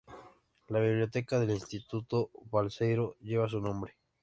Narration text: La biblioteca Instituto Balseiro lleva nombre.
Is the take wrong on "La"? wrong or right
right